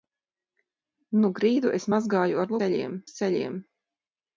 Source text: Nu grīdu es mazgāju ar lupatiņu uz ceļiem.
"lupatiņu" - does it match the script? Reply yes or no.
no